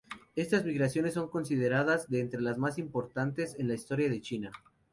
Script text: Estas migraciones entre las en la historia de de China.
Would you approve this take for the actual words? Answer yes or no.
no